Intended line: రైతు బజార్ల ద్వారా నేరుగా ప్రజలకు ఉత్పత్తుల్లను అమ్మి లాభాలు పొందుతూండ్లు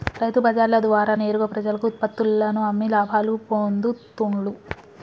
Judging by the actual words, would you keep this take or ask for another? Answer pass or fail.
pass